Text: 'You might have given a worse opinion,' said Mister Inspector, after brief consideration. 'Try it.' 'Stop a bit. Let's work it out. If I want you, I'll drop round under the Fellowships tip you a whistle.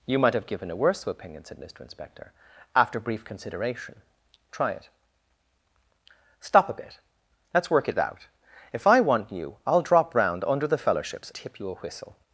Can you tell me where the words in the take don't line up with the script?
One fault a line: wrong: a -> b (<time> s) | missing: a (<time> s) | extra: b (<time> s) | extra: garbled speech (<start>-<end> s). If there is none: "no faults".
no faults